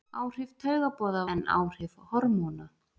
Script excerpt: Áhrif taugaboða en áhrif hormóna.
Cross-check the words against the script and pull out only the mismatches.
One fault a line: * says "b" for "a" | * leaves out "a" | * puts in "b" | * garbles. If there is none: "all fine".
all fine